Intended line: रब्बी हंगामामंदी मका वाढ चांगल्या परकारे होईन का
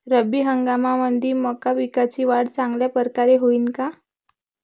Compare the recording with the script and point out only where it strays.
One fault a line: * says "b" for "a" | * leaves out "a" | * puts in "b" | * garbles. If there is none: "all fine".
* puts in "पिकाची"